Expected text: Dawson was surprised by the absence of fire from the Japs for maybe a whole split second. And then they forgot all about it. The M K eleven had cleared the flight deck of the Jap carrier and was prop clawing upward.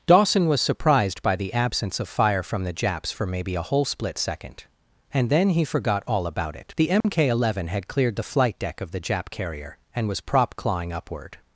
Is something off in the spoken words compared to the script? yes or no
yes